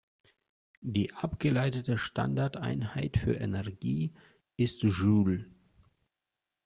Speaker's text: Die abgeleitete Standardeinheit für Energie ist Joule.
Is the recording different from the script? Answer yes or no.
no